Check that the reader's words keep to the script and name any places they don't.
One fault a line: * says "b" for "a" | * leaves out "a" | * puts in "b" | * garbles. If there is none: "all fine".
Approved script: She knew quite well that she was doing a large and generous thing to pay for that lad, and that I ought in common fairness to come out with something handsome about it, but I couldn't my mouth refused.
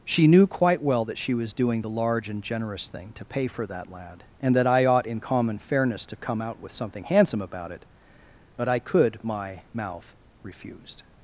* says "the" for "a"
* says "could" for "couldn't"